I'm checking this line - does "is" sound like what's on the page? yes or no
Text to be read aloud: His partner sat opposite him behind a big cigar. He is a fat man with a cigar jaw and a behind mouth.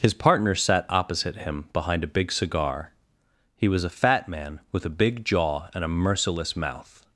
no